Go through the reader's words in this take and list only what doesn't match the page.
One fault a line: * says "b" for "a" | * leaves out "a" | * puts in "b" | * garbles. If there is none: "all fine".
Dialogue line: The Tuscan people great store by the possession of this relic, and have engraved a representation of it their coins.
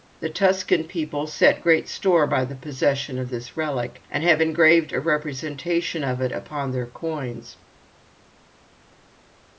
* puts in "set"
* puts in "upon"